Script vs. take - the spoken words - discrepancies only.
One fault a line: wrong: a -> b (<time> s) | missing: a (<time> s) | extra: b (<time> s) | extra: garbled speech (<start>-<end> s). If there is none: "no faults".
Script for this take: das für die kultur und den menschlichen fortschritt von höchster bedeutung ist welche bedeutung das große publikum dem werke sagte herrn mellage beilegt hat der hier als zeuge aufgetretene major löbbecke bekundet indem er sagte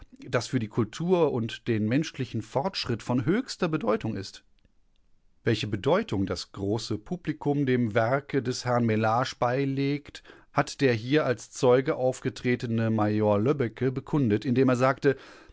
wrong: sagte -> des (8.4 s)